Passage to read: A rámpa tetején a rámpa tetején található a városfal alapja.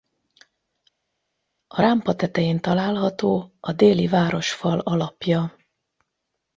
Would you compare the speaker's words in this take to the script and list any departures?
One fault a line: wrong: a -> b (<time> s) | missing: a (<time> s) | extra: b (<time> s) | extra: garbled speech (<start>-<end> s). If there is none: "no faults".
missing: a rámpa tetején (2.6 s)
extra: déli (3.7 s)